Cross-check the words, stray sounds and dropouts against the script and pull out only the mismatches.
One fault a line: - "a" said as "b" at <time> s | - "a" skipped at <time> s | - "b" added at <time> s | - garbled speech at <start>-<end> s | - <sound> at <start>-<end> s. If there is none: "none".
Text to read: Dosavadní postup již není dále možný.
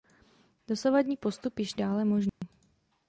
- "není" skipped at 1.8 s
- dropout at 2.3-2.4 s